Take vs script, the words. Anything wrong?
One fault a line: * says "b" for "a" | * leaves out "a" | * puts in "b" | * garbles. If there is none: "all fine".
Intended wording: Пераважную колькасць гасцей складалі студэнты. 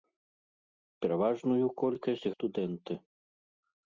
* leaves out "гасцей складалі"